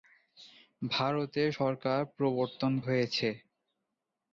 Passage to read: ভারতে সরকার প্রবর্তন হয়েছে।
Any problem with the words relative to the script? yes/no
no